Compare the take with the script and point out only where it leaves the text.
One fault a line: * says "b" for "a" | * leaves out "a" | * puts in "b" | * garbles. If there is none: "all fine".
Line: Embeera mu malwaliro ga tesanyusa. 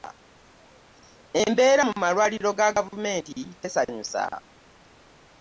* puts in "gavumenti"